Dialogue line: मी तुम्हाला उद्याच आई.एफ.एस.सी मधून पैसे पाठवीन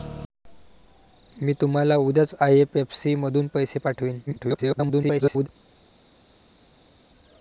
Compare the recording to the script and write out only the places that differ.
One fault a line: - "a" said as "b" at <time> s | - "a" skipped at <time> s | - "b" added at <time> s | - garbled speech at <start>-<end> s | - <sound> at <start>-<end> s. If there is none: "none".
- garbled speech at 4.3-5.5 s